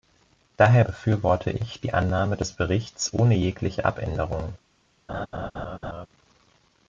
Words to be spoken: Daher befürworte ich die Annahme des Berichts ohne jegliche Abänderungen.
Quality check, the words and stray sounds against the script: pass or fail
fail